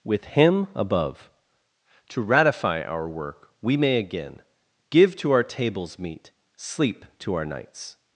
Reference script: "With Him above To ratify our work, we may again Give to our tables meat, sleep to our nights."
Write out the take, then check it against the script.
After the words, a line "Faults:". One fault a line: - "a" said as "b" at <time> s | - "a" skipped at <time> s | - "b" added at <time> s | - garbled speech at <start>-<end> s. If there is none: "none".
"With Him above To ratify our work, we may again Give to our tables meat, sleep to our nights."
Faults:
none